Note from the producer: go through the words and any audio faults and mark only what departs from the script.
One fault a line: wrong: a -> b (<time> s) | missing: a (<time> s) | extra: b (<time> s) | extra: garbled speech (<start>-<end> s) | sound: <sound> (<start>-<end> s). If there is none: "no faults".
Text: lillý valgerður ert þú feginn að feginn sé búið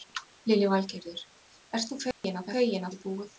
sound: dropout (2.1-2.2 s)